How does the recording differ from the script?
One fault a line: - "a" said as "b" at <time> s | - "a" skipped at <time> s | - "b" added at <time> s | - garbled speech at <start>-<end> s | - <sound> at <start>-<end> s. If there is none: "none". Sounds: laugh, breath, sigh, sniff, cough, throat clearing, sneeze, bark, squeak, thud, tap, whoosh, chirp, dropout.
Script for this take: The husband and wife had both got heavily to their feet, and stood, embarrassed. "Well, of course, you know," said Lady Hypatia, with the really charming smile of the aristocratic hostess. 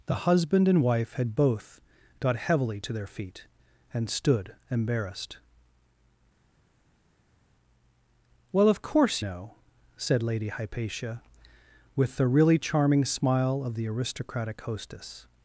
- "you" skipped at 9.2 s